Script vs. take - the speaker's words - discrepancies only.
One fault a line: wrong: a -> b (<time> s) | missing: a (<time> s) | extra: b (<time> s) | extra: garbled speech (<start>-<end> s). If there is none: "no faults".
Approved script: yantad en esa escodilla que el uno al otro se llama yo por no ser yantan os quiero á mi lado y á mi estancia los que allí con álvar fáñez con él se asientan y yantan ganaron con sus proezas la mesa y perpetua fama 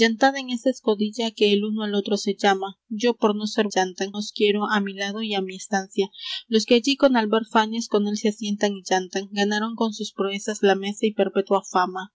no faults